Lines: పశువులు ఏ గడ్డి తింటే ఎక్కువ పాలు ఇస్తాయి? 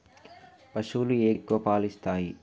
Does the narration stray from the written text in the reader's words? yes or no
yes